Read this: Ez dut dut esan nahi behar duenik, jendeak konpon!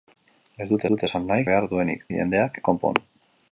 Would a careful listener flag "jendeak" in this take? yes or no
no